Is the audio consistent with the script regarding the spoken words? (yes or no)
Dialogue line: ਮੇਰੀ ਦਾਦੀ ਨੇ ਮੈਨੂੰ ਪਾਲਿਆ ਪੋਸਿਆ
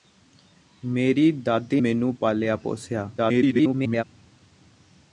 no